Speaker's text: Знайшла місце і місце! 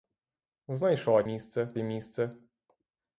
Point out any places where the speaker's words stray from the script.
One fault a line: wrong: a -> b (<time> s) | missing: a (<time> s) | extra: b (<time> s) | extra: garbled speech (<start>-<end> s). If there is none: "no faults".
no faults